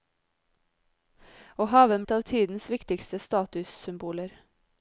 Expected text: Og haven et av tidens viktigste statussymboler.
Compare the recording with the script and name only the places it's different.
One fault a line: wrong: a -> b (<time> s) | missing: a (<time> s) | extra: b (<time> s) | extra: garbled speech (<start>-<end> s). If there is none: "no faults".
no faults